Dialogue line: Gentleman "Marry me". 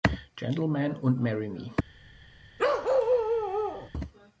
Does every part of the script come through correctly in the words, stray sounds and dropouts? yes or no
no